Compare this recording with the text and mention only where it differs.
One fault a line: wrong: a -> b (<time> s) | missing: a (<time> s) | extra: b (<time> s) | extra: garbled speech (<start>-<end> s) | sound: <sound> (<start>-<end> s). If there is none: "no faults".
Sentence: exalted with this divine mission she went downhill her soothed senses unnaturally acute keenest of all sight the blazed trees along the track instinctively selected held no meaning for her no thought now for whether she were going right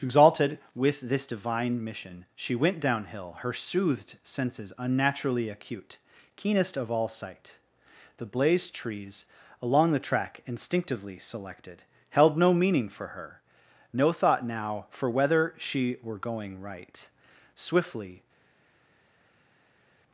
extra: swiftly (17.5 s)